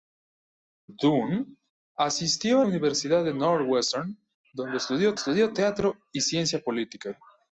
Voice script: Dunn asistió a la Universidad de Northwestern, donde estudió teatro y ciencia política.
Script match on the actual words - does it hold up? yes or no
no